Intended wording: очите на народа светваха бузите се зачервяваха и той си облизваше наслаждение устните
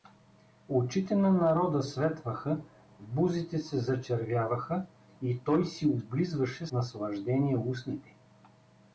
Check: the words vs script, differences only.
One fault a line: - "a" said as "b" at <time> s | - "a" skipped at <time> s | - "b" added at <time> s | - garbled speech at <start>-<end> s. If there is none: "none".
none